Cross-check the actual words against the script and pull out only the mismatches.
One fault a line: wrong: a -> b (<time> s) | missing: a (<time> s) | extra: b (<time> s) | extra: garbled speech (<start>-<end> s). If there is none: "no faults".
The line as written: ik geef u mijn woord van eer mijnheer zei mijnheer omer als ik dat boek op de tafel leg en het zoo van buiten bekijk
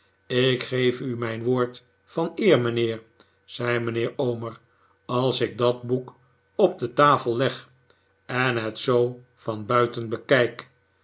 no faults